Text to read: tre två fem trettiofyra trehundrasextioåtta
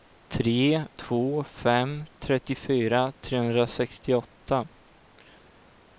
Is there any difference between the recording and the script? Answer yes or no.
no